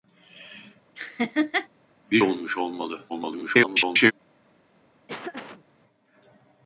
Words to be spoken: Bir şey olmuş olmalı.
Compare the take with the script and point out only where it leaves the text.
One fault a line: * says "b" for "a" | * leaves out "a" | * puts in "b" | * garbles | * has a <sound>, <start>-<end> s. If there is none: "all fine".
* has a laugh, 1.0-1.7 s
* leaves out "şey"
* garbles
* has a laugh, 5.1-5.6 s